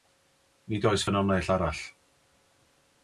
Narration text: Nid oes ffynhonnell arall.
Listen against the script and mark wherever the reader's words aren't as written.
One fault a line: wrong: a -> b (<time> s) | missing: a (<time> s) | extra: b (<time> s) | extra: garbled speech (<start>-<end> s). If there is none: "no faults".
no faults